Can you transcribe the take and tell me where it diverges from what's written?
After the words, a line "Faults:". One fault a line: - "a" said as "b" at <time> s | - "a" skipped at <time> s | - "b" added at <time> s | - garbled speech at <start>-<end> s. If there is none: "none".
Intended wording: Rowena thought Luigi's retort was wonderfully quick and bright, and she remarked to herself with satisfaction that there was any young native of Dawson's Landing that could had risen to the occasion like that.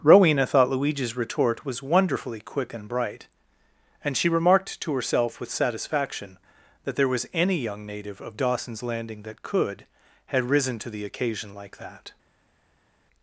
Rowena thought Luigi's retort was wonderfully quick and bright, and she remarked to herself with satisfaction that there was any young native of Dawson's Landing that could had risen to the occasion like that.
Faults:
none